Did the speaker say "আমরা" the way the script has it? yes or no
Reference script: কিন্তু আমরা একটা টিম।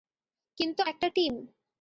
no